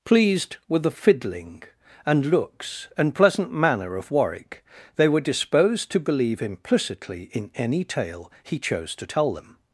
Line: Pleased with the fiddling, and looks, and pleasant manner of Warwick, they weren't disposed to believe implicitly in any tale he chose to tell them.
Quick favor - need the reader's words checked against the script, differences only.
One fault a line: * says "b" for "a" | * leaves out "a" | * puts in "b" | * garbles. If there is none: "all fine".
* says "were" for "weren't"